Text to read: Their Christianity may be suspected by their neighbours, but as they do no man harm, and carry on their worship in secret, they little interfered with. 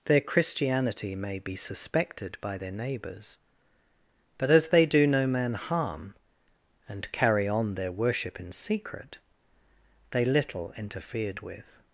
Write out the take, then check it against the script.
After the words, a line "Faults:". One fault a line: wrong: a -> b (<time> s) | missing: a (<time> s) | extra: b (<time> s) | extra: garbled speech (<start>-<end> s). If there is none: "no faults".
Their Christianity may be suspected by their neighbours, but as they do no man harm, and carry on their worship in secret, they little interfered with.
Faults:
no faults